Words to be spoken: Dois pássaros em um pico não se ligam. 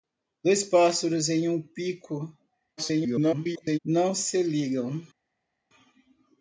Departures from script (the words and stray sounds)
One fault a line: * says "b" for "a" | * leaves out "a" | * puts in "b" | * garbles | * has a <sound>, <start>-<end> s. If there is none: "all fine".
* garbles